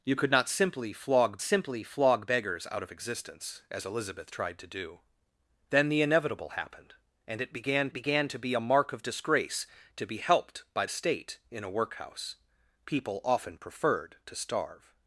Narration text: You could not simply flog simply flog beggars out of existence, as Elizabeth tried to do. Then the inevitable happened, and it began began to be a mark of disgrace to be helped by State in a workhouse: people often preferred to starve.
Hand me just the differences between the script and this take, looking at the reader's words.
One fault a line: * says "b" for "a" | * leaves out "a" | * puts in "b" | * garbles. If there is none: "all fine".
all fine